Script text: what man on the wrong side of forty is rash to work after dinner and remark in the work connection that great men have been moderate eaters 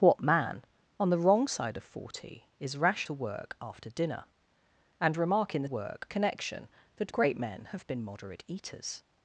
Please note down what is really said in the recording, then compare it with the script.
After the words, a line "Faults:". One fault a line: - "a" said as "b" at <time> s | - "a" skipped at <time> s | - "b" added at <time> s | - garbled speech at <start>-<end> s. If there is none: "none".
what man on the wrong side of forty is rash to work after dinner and remark in the work connection that great men have been moderate eaters
Faults:
none